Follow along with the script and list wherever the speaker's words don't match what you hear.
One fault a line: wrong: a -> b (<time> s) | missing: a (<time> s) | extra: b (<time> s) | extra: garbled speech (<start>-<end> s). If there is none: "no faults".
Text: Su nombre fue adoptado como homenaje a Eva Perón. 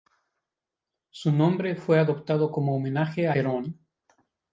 missing: Eva (3.4 s)